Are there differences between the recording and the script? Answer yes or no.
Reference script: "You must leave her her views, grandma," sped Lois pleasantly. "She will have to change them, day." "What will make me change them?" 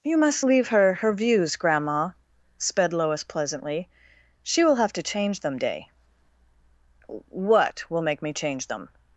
no